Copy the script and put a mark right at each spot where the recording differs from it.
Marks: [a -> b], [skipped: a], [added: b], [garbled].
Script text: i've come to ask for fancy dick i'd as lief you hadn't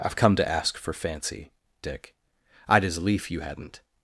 i've come to ask for fancy dick i'd as lief you hadn't